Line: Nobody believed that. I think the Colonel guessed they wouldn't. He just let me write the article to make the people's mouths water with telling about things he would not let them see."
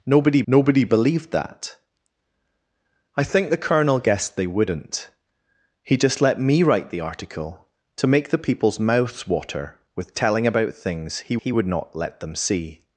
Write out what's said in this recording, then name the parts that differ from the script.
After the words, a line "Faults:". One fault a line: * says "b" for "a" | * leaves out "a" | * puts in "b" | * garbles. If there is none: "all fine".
Nobody nobody believed that. I think the Colonel guessed they wouldn't. He just let me write the article to make the people's mouths water with telling about things he he would not let them see."
Faults:
* puts in "nobody"
* puts in "he"